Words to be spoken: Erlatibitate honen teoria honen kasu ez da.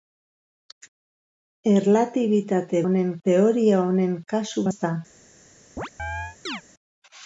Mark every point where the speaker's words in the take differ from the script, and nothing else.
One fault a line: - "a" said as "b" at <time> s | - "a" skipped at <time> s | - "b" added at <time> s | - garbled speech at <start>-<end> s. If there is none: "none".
none